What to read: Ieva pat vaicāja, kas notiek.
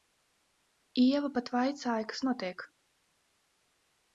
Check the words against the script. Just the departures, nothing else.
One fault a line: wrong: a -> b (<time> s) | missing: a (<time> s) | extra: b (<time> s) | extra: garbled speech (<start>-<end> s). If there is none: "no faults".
no faults